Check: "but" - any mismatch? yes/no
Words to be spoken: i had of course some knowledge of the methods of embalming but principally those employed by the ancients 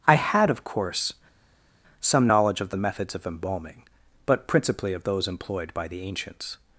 no